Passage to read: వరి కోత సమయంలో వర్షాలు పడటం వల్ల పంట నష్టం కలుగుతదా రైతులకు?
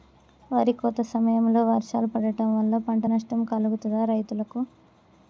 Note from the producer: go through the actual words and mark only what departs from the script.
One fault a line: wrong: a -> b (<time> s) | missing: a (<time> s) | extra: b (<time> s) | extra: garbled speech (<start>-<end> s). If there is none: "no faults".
no faults